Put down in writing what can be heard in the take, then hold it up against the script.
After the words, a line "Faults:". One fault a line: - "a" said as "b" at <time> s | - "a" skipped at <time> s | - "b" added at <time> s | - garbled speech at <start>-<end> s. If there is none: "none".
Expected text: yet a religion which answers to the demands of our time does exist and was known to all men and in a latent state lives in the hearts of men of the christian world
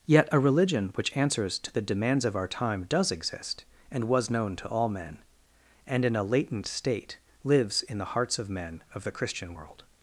yet a religion which answers to the demands of our time does exist and was known to all men and in a latent state lives in the hearts of men of the christian world
Faults:
none